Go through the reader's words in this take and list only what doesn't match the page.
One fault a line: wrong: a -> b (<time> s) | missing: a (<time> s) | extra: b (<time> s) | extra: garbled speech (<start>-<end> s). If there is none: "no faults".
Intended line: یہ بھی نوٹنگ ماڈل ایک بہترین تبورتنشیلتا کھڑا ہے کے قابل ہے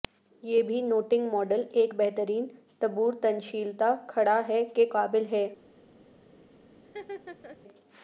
no faults